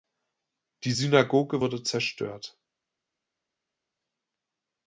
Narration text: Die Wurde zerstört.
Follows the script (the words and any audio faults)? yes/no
no